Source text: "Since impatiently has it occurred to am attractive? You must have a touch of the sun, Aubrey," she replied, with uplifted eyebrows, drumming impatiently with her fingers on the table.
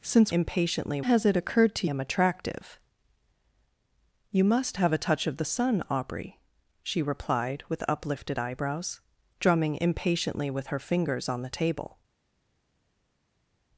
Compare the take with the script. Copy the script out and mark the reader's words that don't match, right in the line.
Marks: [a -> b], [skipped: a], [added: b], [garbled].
"Since impatiently has it occurred to am attractive? You must have a touch of the sun, Aubrey," she replied, with uplifted eyebrows, drumming impatiently with her fingers on the table.